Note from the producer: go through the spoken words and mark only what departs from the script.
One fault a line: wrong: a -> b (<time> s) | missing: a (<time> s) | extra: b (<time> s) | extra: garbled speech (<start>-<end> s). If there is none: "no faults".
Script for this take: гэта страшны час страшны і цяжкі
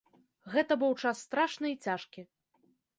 wrong: страшны -> быў (0.8 s)